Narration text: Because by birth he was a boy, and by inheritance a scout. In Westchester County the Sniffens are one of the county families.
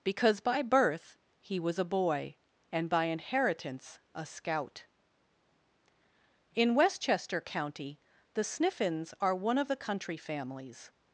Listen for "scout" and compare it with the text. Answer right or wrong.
right